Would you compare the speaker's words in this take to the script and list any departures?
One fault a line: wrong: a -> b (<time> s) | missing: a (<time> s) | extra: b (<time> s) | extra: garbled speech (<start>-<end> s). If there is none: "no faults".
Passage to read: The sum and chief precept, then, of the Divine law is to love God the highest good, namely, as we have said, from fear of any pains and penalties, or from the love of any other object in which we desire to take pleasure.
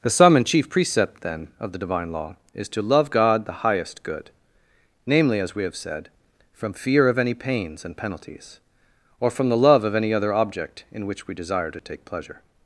no faults